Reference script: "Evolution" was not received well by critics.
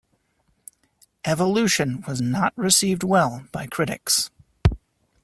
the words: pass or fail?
pass